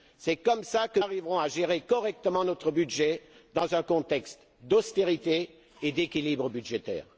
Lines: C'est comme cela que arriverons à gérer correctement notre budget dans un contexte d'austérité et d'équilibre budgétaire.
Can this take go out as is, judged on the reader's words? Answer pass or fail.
pass